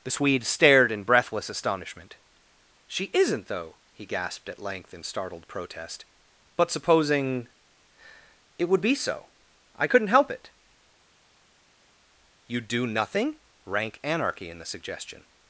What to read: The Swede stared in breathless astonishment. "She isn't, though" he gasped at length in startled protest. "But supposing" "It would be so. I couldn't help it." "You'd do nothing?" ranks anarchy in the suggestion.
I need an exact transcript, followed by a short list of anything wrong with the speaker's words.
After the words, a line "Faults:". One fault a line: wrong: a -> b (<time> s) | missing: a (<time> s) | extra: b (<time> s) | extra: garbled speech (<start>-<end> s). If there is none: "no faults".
The Swede stared in breathless astonishment. "She isn't, though" he gasped at length in startled protest. "But supposing" "It would be so. I couldn't help it." "You'd do nothing?" rank anarchy in the suggestion.
Faults:
wrong: ranks -> rank (13.6 s)